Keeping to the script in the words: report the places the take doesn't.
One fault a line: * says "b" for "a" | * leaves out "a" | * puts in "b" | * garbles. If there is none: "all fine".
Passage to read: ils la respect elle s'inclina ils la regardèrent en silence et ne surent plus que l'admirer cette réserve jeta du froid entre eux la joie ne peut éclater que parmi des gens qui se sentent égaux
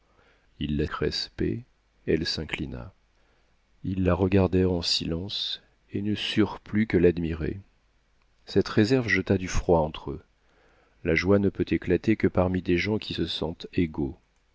all fine